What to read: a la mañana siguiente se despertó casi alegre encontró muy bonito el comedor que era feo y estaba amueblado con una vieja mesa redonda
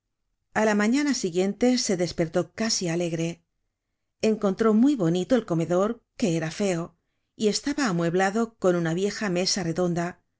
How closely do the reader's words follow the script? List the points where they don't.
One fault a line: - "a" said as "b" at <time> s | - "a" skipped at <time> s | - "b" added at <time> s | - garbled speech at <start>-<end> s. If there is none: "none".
none